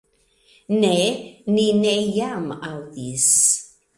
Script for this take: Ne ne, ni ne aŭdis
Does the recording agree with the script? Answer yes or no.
no